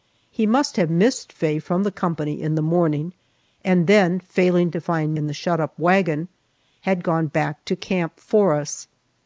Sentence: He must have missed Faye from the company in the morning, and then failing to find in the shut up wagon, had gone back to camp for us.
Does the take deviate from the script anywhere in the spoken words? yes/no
no